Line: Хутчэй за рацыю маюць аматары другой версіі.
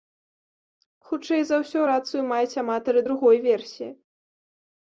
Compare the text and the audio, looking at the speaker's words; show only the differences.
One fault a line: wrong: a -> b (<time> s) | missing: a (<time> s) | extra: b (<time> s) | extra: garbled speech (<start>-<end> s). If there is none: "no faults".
extra: ўсё (1.6 s)